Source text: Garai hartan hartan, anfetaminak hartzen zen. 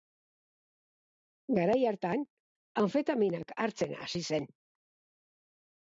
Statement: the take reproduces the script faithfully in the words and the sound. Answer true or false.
false